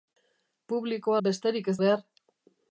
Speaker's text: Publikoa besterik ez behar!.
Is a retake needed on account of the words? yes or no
no